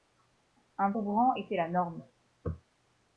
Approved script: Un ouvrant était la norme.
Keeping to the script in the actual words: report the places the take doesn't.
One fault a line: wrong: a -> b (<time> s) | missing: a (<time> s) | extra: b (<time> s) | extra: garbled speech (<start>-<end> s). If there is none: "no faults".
no faults